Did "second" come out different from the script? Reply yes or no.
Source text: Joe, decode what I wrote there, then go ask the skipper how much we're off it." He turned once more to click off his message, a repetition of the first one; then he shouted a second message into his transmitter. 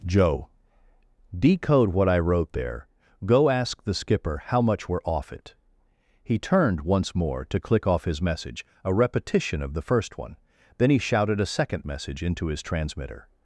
no